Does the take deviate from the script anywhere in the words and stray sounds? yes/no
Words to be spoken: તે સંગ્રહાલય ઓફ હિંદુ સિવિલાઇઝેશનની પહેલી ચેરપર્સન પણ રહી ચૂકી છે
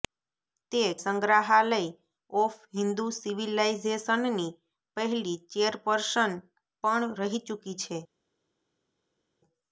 no